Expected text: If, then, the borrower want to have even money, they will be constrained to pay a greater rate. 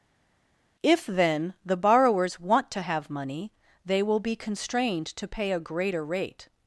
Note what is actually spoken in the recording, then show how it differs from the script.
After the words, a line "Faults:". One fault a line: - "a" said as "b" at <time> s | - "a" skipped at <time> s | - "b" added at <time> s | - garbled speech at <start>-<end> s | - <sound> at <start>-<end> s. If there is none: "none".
If, then, the borrowers want to have money, they will be constrained to pay a greater rate.
Faults:
- "borrower" said as "borrowers" at 1.8 s
- "even" skipped at 3.1 s